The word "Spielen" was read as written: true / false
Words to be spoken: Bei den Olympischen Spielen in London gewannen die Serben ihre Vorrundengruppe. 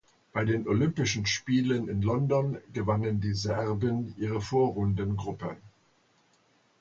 true